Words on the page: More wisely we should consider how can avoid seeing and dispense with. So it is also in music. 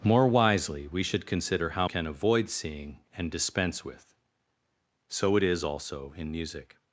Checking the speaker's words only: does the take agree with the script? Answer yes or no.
yes